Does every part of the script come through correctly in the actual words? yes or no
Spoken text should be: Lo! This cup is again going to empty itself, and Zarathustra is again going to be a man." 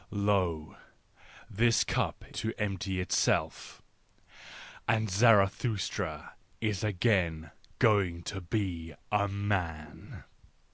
no